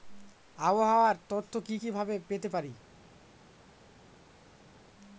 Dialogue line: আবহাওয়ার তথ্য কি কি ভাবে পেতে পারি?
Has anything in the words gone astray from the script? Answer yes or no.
no